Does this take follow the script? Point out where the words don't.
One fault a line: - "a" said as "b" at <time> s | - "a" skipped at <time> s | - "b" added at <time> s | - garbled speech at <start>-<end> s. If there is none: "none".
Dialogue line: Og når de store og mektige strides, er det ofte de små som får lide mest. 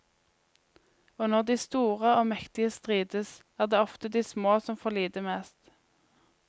none